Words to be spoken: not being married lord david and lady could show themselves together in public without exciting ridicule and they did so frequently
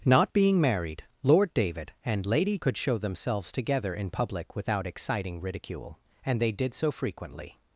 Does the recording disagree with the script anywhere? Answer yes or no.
no